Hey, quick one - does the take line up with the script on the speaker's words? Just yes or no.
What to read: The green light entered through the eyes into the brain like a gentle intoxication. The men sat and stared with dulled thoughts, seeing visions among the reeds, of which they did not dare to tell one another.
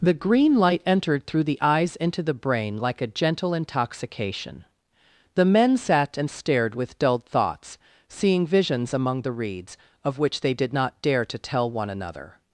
yes